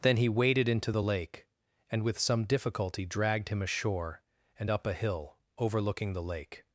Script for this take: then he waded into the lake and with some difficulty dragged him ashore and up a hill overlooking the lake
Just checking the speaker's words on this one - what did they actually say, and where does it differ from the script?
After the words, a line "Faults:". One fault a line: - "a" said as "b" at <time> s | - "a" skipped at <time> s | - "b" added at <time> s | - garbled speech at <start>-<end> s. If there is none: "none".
then he waded into the lake and with some difficulty dragged him ashore and up a hill overlooking the lake
Faults:
none